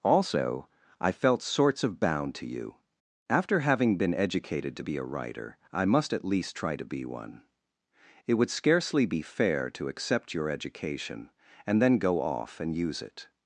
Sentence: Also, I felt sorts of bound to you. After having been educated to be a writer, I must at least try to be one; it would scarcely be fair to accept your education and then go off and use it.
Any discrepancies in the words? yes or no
no